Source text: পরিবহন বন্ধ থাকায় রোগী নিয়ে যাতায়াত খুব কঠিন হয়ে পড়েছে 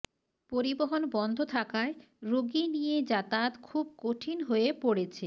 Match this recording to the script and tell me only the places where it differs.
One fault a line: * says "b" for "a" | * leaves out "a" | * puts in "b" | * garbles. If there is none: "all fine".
all fine